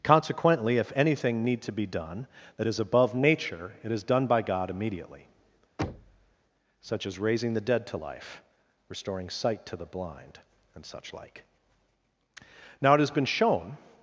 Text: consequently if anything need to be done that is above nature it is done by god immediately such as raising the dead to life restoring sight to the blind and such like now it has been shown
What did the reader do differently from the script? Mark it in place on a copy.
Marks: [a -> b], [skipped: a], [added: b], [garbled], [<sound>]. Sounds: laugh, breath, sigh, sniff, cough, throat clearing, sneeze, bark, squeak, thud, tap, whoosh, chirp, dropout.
consequently if anything need to be done that is above nature it is done by god immediately [thud] such as raising the dead to life restoring sight to the blind and such like now it has been shown